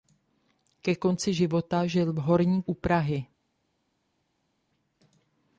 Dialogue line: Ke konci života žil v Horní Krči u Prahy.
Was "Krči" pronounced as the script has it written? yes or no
no